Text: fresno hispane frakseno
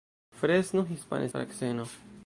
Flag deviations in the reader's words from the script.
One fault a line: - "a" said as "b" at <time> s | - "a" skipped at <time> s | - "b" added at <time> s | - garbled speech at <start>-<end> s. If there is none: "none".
none